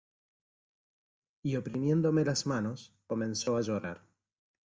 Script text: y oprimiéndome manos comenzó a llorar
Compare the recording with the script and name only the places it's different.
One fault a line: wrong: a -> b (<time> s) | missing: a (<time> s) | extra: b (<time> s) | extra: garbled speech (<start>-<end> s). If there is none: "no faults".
extra: las (2.2 s)